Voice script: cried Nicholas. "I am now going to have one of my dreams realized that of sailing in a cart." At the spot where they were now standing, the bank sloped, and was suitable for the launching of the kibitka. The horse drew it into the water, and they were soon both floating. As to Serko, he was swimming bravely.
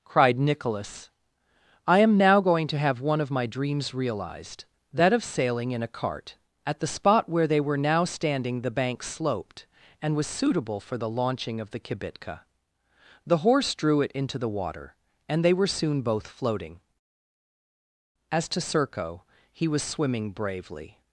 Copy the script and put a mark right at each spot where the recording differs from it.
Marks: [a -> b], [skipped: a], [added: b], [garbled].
cried Nicholas. "I am now going to have one of my dreams realized that of sailing in a cart." At the spot where they were now standing, the bank sloped, and was suitable for the launching of the kibitka. The horse drew it into the water, and they were soon both floating. As to Serko, he was swimming bravely.